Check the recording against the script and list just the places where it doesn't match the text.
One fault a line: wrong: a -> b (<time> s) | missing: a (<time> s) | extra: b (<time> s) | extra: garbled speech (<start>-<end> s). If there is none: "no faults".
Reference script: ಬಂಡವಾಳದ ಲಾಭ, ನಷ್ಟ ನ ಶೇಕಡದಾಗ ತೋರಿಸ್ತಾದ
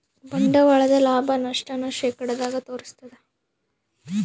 no faults